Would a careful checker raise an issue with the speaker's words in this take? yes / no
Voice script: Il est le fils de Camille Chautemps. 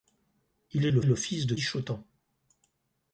yes